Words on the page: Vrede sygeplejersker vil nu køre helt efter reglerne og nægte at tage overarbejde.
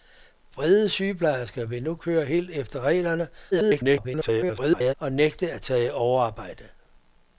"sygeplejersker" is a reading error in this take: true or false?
false